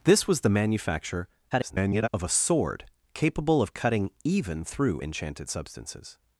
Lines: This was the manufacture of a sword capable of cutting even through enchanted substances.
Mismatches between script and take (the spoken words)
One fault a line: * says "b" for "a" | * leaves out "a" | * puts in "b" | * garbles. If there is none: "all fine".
* garbles